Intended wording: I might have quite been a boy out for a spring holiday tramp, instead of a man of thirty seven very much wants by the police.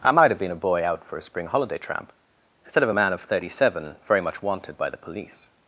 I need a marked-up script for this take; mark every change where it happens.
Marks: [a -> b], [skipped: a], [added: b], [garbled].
I might have [skipped: quite] been a boy out for a spring holiday tramp, instead of a man of thirty seven very much [wants -> wanted] by the police.